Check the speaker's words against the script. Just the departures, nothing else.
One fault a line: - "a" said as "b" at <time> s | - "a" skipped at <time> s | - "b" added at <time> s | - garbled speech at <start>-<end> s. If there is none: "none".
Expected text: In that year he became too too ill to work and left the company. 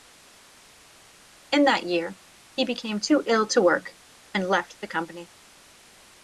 - "too" skipped at 3.2 s